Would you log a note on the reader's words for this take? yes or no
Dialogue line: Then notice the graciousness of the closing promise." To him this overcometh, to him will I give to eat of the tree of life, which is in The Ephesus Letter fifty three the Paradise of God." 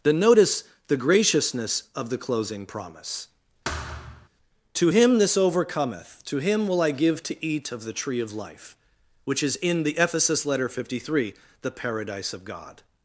no